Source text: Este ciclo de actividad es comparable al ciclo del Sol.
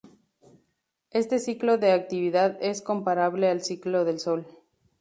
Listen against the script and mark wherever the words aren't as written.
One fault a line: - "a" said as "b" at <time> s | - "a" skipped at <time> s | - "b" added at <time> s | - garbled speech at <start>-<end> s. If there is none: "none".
none